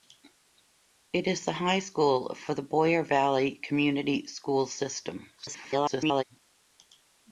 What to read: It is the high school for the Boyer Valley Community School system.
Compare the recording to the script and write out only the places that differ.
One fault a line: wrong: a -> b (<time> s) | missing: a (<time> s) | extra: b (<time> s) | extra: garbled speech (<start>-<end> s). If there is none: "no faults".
extra: garbled speech (5.4-6.2 s)